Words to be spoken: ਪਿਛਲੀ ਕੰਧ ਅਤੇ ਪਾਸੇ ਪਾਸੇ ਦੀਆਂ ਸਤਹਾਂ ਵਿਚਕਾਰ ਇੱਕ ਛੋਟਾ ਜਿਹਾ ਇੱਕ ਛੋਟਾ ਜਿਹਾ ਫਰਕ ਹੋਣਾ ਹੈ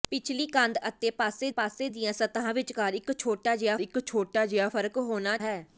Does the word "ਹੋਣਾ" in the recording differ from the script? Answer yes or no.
no